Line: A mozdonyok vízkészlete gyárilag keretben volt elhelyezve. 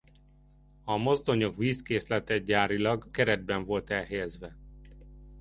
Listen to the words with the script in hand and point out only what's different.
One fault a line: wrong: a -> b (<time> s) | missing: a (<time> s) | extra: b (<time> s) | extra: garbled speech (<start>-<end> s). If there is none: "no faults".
no faults